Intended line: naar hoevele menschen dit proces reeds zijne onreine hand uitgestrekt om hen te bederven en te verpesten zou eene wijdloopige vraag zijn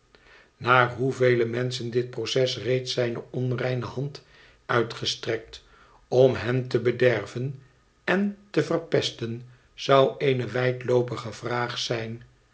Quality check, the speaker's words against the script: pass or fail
pass